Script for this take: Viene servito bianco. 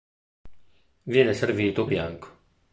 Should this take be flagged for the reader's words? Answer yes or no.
no